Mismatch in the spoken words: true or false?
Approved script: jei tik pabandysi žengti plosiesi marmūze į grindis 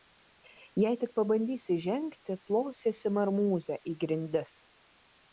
false